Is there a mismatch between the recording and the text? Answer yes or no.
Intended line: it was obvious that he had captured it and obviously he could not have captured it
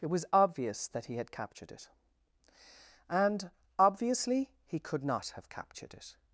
no